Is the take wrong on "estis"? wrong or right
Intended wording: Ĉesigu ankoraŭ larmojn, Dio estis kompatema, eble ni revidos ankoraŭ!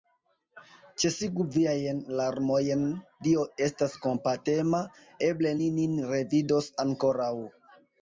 wrong